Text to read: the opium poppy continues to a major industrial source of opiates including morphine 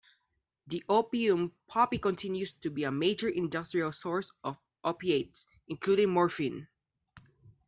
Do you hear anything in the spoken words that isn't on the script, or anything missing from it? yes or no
yes